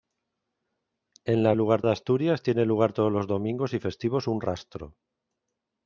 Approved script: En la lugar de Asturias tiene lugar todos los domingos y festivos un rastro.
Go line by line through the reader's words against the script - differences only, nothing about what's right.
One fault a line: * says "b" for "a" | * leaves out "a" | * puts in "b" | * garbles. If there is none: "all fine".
all fine